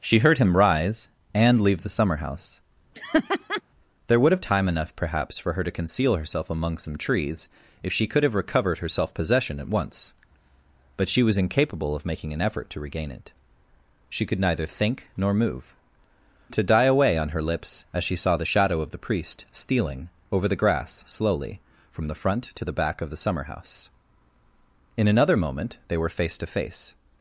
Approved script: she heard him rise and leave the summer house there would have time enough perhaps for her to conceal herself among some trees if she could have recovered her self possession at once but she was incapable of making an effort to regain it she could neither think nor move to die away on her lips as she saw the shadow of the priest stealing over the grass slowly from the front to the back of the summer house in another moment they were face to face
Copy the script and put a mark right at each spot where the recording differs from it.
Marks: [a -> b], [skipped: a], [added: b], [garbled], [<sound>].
she heard him rise and leave the summer house [laugh] there would have time enough perhaps for her to conceal herself among some trees if she could have recovered her self possession at once but she was incapable of making an effort to regain it she could neither think nor move to die away on her lips as she saw the shadow of the priest stealing over the grass slowly from the front to the back of the summer house in another moment they were face to face